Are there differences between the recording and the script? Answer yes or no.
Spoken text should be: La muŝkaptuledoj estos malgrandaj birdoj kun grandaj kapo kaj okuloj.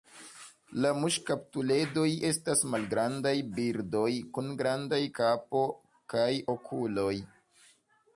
yes